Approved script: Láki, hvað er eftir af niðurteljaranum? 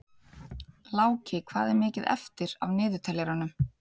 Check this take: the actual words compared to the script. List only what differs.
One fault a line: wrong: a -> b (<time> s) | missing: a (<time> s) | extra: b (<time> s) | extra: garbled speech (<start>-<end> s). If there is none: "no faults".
extra: mikið (1.8 s)